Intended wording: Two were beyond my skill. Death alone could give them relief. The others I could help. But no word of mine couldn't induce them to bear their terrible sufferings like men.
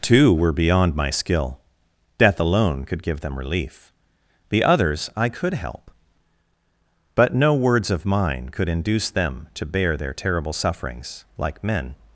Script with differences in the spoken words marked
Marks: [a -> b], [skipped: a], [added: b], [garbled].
Two were beyond my skill. Death alone could give them relief. The others I could help. But no [word -> words] of mine [couldn't -> could] induce them to bear their terrible sufferings like men.